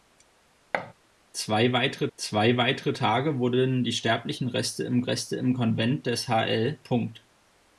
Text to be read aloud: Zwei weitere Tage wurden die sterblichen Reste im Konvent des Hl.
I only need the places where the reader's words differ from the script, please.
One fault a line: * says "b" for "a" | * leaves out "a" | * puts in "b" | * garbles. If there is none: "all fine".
* puts in "zwei weitere"
* puts in "Reste im"